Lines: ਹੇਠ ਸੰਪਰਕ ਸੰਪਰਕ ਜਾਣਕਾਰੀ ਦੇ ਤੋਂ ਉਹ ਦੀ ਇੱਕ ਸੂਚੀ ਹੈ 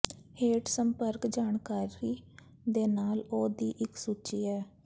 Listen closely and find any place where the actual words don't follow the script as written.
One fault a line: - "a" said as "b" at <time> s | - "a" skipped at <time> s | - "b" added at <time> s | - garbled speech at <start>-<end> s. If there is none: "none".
- "ਸੰਪਰਕ" skipped at 1.3 s
- "ਤੋਂ" said as "ਨਾਲ" at 2.9 s